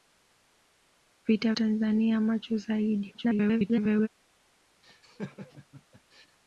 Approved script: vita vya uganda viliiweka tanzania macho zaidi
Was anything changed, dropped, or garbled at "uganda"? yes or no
yes